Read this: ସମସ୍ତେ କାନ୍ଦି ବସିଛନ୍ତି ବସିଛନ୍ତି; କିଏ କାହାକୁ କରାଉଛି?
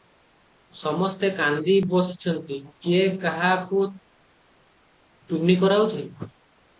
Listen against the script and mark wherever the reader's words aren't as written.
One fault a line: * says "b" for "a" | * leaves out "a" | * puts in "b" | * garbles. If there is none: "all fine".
* leaves out "ବସିଛନ୍ତି"
* puts in "ତୁନି"